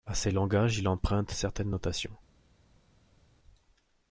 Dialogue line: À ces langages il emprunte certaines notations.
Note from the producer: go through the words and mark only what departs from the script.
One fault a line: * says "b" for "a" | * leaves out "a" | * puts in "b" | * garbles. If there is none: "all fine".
all fine